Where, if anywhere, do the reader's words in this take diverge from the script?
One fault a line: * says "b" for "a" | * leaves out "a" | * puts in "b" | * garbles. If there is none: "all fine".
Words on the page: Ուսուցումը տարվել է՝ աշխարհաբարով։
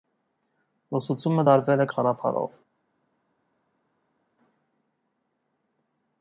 all fine